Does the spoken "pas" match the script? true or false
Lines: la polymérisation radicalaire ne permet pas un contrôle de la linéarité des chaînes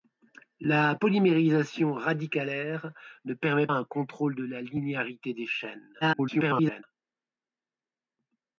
false